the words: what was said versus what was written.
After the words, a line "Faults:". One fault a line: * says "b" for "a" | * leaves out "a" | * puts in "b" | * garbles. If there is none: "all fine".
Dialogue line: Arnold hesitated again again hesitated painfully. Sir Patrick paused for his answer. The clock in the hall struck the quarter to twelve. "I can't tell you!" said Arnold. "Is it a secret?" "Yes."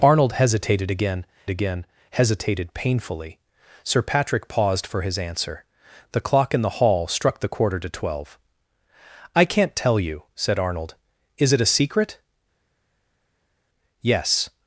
Arnold hesitated again again hesitated painfully. Sir Patrick paused for his answer. The clock in the hall struck the quarter to twelve. "I can't tell you!" said Arnold. "Is it a secret?" "Yes."
Faults:
all fine